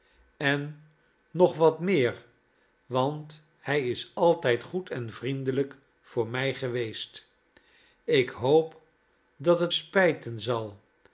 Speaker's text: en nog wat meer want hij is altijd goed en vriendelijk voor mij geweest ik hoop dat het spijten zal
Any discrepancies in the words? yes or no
no